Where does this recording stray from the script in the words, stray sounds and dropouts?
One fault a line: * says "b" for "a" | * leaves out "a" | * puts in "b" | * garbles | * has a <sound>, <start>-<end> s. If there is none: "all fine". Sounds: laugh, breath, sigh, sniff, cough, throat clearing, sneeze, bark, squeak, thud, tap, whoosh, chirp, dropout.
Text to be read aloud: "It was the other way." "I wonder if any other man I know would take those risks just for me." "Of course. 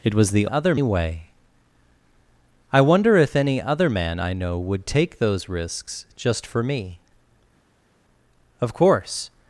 all fine